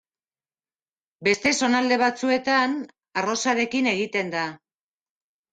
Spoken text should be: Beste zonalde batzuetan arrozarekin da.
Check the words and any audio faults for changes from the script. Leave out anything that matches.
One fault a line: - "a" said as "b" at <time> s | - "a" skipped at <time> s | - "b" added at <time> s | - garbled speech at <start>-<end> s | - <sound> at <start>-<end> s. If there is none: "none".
- "egiten" added at 3.9 s